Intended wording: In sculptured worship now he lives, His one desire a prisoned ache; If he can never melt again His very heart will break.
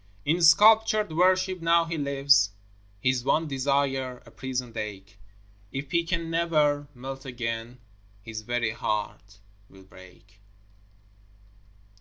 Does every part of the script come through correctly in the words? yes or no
yes